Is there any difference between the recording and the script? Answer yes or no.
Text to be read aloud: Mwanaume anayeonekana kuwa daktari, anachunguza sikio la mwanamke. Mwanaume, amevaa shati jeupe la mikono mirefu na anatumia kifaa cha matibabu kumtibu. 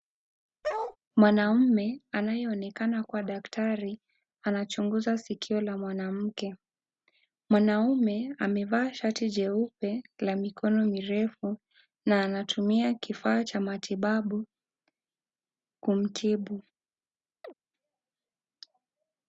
no